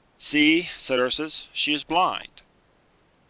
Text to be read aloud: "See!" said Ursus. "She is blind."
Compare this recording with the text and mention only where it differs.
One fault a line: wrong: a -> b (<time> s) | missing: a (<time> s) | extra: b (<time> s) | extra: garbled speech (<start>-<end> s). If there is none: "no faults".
no faults